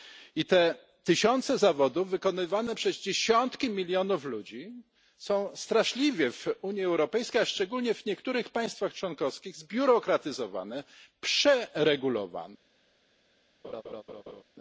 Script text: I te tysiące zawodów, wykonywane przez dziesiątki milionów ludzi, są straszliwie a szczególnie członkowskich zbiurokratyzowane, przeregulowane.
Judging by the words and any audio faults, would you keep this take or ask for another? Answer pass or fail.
fail